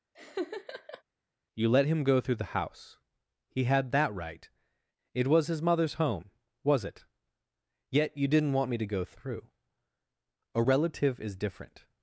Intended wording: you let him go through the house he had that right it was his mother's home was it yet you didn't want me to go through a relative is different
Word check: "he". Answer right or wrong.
right